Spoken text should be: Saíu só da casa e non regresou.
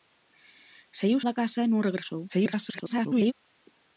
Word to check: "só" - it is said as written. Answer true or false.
false